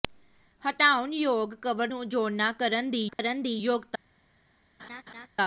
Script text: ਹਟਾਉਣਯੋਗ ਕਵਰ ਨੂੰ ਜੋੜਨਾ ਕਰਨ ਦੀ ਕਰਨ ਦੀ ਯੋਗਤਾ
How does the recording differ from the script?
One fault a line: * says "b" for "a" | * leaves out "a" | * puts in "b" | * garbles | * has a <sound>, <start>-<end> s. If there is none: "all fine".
* has a dropout, 3.1-3.2 s
* has a laugh, 4.8-5.3 s